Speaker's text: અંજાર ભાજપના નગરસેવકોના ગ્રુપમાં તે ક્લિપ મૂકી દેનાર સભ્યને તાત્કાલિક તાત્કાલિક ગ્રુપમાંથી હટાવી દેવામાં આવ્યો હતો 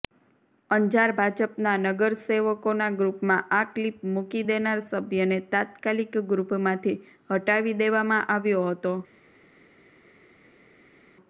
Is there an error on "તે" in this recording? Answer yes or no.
yes